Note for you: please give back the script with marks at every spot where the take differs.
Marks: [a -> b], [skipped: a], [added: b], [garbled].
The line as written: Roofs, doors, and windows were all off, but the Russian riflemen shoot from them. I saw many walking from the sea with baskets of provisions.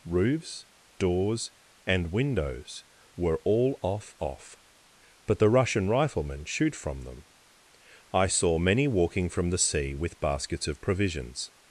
Roofs, doors, and windows were all off, [added: off] but the Russian riflemen shoot from them. I saw many walking from the sea with baskets of provisions.